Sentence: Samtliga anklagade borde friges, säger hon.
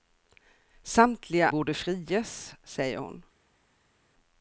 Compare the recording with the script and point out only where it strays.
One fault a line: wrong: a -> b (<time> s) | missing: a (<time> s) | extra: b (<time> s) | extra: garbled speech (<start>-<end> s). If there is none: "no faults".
missing: anklagade (1.5 s)